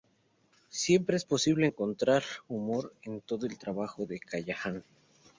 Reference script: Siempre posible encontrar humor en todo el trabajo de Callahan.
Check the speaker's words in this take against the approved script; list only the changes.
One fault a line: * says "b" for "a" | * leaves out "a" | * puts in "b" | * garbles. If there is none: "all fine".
* puts in "es"